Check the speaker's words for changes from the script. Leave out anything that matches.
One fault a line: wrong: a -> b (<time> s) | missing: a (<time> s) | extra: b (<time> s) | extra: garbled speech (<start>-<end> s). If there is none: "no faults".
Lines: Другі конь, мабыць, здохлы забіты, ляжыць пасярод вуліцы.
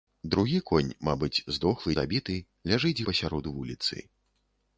no faults